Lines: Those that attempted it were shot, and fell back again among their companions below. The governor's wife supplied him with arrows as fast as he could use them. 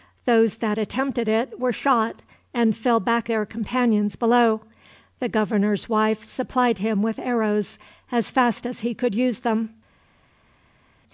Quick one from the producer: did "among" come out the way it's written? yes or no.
no